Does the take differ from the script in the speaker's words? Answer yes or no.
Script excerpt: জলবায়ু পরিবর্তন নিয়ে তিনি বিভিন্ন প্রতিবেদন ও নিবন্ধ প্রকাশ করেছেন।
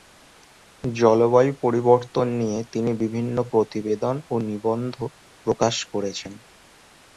no